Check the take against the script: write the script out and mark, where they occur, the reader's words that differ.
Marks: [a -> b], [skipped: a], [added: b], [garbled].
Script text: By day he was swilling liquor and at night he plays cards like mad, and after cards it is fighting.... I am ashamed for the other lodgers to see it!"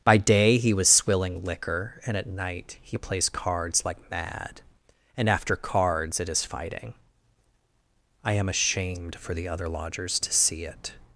By day he was swilling liquor and at night he plays cards like mad, and after cards it is fighting.... I am ashamed for the other lodgers to see it!"